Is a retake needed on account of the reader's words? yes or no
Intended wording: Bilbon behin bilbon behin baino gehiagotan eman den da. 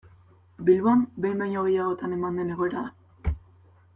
yes